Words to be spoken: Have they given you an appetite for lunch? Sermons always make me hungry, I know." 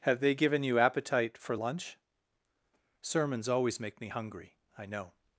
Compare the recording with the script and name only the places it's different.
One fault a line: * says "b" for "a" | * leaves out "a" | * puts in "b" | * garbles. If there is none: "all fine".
* leaves out "an"